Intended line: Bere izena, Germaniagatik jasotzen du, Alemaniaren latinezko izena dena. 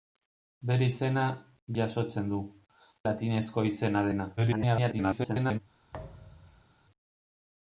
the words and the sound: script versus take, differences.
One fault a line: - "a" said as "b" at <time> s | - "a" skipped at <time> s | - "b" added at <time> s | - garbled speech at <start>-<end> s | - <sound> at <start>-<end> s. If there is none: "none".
- "Germaniagatik" skipped at 1.2 s
- "Alemaniaren" skipped at 2.4 s
- garbled speech at 4.4-5.6 s
- thud at 5.9-6.7 s